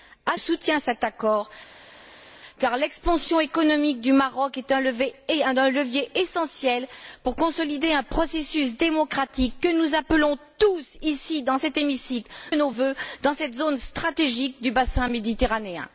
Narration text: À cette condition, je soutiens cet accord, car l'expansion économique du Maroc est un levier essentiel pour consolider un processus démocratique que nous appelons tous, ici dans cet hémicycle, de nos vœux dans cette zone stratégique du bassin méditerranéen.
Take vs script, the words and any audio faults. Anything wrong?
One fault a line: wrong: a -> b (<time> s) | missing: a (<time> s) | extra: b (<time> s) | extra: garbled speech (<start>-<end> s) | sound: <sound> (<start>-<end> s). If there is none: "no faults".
missing: cette condition je (0.4 s)
missing: de (12.3 s)